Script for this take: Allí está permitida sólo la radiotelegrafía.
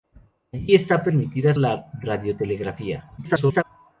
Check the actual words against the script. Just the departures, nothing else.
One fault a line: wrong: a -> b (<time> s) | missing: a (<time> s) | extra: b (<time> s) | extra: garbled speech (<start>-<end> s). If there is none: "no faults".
missing: sólo (1.5 s)
extra: garbled speech (3.2-3.6 s)